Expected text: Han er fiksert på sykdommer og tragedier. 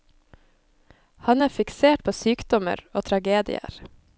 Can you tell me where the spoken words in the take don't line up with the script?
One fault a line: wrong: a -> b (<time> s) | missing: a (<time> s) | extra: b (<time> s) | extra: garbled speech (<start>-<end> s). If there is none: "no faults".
no faults